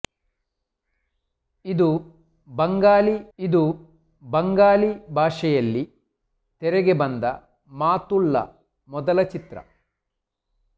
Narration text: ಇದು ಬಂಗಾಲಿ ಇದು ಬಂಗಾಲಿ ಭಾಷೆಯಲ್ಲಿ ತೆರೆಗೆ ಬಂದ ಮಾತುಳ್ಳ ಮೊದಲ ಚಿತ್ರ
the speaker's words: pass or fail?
pass